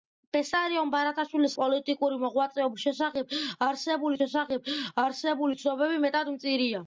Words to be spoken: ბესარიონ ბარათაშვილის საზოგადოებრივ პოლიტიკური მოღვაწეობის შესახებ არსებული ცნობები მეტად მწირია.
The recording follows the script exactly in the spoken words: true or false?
false